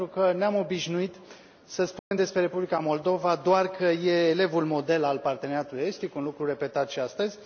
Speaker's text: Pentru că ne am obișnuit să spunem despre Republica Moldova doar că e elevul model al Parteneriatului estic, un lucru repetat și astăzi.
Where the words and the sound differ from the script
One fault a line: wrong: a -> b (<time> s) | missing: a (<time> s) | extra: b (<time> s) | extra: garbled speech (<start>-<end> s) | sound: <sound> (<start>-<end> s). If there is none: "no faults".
sound: dropout (2.0-2.1 s)